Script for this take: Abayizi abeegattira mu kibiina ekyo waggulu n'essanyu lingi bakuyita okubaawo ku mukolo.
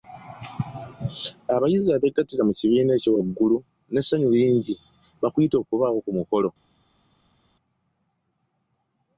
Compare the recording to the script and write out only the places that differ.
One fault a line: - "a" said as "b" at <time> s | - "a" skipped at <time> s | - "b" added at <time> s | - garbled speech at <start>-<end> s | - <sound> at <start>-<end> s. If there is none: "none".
none